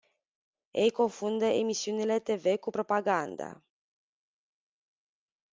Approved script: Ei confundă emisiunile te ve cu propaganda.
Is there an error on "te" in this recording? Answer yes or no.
no